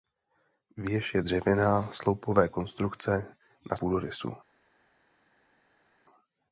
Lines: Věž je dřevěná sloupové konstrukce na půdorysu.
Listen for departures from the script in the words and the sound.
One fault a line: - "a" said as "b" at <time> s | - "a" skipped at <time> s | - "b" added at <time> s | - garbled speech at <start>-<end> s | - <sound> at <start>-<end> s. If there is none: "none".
none